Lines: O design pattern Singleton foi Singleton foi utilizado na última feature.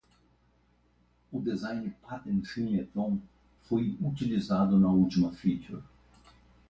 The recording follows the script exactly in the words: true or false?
false